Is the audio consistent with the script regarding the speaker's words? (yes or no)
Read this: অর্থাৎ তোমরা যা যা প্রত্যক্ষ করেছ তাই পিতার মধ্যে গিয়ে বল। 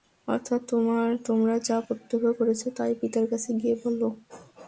no